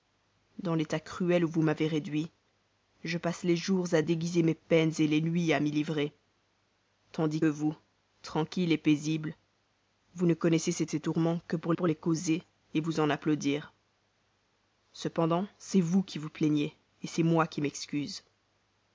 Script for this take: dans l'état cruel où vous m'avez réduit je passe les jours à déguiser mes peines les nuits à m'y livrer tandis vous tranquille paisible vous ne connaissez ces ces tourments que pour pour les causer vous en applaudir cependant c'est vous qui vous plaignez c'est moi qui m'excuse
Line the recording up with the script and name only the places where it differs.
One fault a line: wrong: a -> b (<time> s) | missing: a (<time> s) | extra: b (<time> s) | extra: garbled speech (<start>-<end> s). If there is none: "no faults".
no faults